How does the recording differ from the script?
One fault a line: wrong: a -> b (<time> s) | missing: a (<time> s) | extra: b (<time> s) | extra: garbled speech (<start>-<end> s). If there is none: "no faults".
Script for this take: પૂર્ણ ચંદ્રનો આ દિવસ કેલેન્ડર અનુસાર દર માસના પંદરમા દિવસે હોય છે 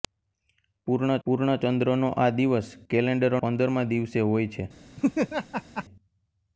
extra: પૂર્ણ (1.3 s)
missing: અનુસાર દર માસના (3.4 s)